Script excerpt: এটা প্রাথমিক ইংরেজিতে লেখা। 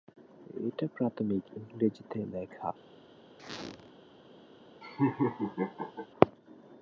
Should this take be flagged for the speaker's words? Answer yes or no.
no